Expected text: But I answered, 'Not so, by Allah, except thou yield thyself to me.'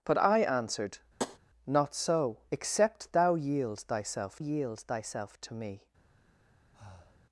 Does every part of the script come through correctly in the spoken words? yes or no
no